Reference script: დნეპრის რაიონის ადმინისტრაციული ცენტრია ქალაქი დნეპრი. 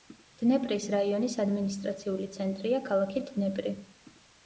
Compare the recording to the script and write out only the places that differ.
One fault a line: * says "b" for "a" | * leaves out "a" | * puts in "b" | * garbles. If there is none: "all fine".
all fine